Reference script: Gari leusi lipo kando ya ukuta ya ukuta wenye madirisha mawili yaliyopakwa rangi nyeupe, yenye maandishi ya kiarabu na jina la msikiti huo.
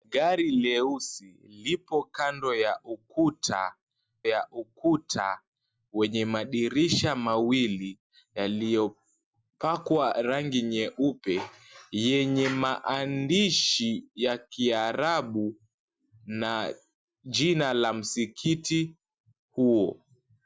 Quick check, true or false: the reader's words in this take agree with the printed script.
true